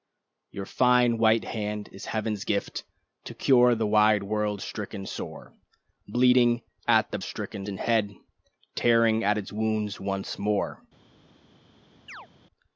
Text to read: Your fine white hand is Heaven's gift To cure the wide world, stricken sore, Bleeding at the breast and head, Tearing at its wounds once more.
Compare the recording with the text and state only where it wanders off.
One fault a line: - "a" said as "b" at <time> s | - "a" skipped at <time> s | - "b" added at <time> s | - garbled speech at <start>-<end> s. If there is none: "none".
- "breast" said as "stricken" at 7.2 s